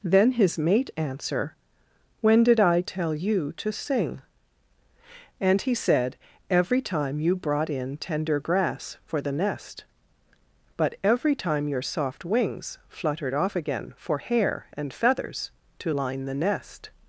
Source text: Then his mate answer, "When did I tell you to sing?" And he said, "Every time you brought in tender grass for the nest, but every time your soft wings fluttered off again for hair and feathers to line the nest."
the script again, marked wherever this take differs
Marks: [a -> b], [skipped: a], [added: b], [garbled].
Then his mate answer, "When did I tell you to sing?" And he said, "Every time you brought in tender grass for the nest, but every time your soft wings fluttered off again for hair and feathers to line the nest."